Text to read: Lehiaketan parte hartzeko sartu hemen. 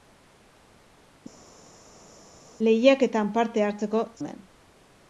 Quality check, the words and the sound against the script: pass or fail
fail